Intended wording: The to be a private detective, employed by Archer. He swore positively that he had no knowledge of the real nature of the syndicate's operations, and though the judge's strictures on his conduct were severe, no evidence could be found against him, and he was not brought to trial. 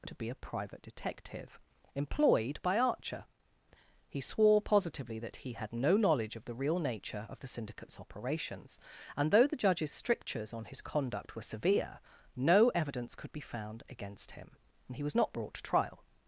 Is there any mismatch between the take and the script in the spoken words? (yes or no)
no